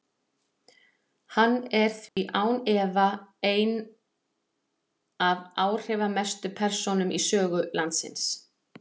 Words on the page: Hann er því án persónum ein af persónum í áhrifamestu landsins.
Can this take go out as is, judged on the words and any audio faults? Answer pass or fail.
fail